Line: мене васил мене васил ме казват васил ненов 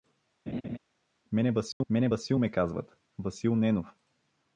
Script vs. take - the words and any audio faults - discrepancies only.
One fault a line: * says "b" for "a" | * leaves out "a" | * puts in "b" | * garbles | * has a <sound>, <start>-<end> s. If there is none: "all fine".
* has a laugh, 0.5-0.8 s
* has a dropout, 1.7-1.8 s